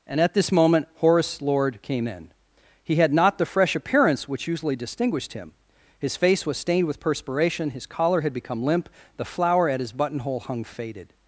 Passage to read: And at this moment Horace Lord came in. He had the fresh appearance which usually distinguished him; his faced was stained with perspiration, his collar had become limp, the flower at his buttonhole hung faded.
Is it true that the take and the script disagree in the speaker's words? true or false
true